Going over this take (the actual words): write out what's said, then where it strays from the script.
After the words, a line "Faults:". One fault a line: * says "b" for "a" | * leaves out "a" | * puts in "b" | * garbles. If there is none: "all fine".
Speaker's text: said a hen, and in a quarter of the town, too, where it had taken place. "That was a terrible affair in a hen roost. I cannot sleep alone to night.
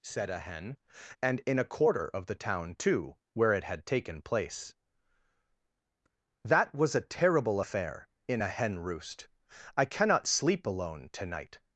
said a hen, and in a quarter of the town, too, where it had taken place. "That was a terrible affair in a hen roost. I cannot sleep alone to night.
Faults:
all fine